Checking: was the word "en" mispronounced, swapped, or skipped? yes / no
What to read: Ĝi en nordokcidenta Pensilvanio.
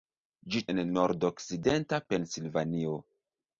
no